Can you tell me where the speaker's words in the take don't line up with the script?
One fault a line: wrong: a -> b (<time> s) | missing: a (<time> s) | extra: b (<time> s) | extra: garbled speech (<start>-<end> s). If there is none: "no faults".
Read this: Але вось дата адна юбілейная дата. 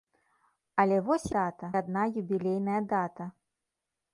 no faults